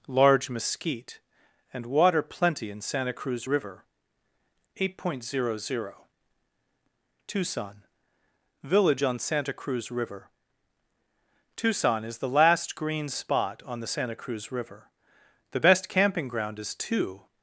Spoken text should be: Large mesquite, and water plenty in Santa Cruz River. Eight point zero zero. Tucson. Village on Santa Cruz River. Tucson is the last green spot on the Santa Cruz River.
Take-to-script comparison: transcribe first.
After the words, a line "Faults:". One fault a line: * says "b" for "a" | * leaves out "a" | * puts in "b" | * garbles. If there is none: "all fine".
Large mesquite, and water plenty in Santa Cruz River. Eight point zero zero. Tucson. Village on Santa Cruz River. Tucson is the last green spot on the Santa Cruz River. The best camping ground is two
Faults:
* puts in "The best camping ground is two"